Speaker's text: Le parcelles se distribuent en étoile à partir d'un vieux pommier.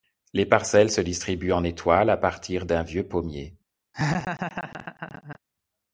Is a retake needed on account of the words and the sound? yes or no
yes